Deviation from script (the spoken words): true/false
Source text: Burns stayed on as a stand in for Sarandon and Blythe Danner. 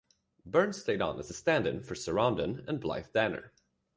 false